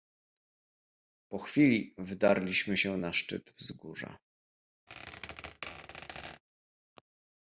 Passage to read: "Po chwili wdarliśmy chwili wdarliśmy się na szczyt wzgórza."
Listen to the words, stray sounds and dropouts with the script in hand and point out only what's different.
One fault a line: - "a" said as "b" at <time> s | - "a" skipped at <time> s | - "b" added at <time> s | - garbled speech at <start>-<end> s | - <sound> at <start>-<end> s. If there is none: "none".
- "chwili wdarliśmy" skipped at 2.8 s
- squeak at 4.9-6.4 s